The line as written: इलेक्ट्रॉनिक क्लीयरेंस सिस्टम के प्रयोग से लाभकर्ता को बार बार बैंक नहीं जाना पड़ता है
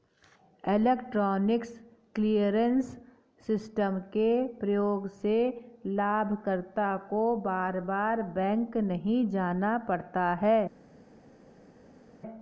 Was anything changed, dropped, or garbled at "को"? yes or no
no